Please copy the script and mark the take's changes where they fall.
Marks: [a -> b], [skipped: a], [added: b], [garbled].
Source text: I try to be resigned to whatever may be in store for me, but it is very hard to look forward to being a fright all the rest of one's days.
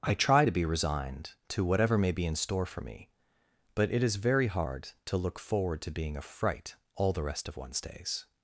I try to be resigned to whatever may be in store for me, but it is very hard to look forward to being a fright all the rest of one's days.